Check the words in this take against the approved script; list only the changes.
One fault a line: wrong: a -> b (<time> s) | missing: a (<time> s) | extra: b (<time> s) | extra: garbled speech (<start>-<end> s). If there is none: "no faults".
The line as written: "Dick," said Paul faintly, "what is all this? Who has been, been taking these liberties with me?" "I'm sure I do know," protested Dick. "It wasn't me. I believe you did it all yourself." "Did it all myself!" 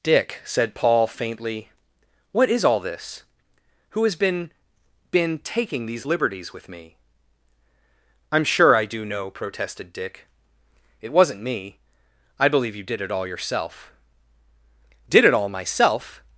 no faults